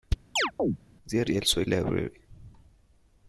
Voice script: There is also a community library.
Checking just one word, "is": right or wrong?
wrong